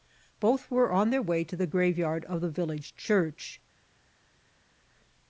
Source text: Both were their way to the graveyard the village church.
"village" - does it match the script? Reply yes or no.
yes